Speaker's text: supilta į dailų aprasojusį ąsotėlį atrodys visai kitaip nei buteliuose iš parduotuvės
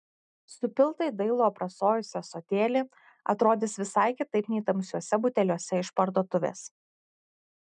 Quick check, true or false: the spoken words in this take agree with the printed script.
false